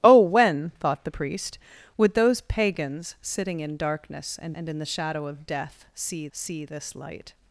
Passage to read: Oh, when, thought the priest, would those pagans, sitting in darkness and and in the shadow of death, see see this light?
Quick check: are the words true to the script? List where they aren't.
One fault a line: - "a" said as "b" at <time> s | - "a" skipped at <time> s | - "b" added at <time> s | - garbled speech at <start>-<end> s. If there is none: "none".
none